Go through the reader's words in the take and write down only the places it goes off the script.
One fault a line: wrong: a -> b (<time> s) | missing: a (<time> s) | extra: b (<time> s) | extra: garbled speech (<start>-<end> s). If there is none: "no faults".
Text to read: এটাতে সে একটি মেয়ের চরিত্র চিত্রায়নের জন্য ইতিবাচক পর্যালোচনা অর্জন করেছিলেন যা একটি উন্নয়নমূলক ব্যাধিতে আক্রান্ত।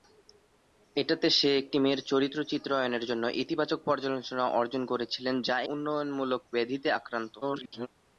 missing: একটি (5.5 s)
extra: garbled speech (7.4-7.9 s)